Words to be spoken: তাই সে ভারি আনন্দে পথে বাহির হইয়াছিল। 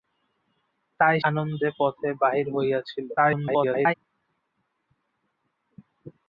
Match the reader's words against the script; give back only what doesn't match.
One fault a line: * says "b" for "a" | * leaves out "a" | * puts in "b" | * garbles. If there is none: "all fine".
* leaves out "সে ভারি"
* garbles